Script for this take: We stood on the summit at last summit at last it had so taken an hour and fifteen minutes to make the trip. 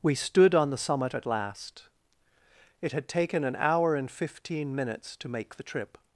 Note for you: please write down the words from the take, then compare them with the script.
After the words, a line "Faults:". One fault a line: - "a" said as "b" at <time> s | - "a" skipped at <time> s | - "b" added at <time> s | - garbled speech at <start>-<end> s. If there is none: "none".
We stood on the summit at last it had taken an hour and fifteen minutes to make the trip.
Faults:
- "summit at last" skipped at 1.8 s
- "so" skipped at 3.1 s